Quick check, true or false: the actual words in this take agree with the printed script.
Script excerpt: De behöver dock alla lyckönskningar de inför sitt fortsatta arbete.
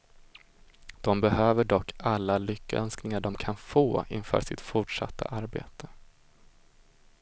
false